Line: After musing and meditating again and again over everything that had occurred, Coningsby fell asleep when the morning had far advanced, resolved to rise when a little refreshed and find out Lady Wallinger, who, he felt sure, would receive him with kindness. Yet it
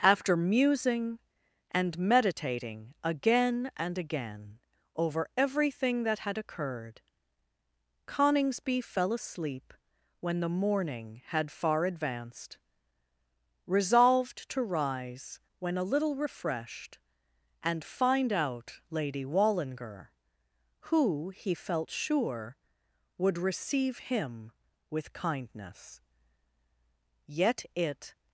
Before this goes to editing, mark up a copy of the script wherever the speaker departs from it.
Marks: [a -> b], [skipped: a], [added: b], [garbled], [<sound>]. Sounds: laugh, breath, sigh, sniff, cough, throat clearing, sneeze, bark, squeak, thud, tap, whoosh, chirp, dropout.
After musing and meditating again and again over everything that had occurred, Coningsby fell asleep when the morning had far advanced, resolved to rise when a little refreshed and find out Lady Wallinger, who, he felt sure, would receive him with kindness. Yet it